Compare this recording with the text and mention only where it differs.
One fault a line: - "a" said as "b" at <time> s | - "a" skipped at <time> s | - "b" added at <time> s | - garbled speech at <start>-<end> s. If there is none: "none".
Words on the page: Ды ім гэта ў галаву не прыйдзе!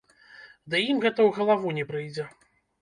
none